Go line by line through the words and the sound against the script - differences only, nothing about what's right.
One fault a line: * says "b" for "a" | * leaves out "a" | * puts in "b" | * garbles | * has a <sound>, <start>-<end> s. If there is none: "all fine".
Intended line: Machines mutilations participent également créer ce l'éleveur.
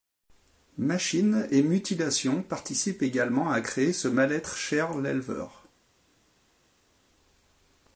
* puts in "et"
* puts in "à"
* puts in "mal être cher"